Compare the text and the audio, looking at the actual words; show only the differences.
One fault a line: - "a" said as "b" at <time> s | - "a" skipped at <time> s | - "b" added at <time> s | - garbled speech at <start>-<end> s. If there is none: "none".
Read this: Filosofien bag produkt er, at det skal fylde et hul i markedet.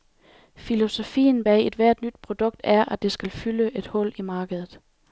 - "ethvert nyt" added at 1.7 s